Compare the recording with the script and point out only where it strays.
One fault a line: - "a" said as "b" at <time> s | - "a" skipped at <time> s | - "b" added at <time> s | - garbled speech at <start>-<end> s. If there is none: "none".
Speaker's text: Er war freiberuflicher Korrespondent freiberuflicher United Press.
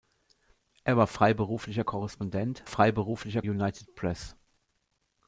none